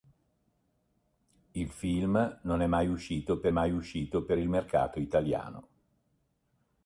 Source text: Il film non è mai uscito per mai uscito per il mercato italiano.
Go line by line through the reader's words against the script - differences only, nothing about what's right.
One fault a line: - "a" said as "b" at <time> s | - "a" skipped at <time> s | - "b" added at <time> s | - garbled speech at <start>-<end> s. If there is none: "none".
none